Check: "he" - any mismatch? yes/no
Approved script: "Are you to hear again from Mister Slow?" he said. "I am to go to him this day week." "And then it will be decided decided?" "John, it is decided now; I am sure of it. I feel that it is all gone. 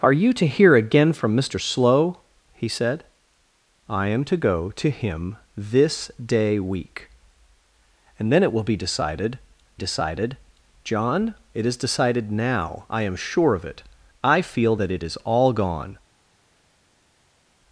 no